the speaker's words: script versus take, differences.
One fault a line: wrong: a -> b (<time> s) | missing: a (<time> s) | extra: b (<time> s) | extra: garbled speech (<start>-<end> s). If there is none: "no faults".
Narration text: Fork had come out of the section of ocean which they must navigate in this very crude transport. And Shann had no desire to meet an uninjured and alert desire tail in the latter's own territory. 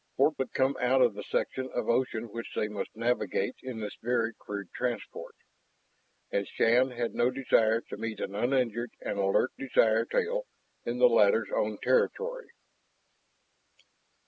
no faults